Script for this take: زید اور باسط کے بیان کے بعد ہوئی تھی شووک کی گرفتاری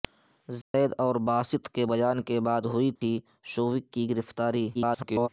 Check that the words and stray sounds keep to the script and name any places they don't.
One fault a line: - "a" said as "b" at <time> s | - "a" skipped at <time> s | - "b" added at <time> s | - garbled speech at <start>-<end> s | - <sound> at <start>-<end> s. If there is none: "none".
- dropout at 0.6-0.7 s
- dropout at 3.0-3.0 s
- garbled speech at 4.7-5.3 s